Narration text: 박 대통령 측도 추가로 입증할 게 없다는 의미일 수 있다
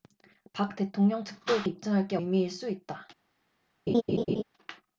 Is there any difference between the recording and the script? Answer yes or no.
yes